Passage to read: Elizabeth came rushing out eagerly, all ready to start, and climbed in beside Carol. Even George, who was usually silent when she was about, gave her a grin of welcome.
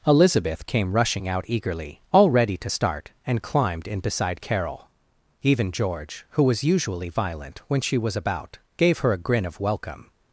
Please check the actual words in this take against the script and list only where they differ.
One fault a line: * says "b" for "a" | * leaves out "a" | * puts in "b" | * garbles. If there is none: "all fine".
* says "violent" for "silent"